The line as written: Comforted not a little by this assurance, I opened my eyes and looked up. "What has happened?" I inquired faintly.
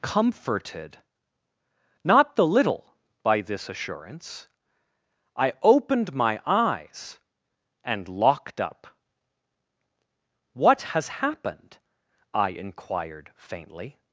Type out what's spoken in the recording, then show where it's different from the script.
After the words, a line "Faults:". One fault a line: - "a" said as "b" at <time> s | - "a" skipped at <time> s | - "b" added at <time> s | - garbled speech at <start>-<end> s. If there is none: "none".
Comforted not the little by this assurance, I opened my eyes and locked up. "What has happened?" I inquired faintly.
Faults:
- "a" said as "the" at 2.4 s
- "looked" said as "locked" at 8.1 s